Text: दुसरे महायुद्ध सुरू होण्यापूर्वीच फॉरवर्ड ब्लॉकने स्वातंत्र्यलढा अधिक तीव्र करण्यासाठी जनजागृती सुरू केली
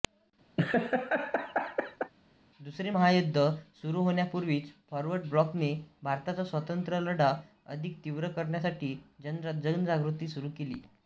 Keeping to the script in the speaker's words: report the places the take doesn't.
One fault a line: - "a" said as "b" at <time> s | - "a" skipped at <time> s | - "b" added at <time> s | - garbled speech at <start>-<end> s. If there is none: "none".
- "भारताचा" added at 6.0 s